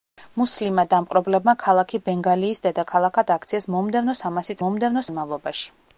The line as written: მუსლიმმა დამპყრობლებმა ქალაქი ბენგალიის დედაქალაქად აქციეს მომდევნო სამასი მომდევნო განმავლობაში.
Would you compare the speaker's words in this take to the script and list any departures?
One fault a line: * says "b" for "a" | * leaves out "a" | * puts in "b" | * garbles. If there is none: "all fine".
all fine